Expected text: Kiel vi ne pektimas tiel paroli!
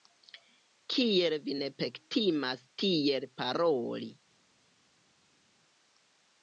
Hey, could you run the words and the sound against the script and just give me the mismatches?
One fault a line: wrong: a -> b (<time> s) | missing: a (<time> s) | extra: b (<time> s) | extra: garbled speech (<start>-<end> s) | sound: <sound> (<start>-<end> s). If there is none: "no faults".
no faults